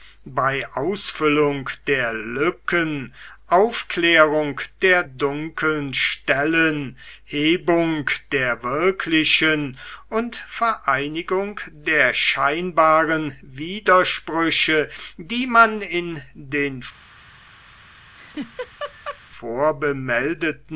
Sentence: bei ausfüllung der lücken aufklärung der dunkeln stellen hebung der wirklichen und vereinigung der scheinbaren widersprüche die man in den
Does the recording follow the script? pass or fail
pass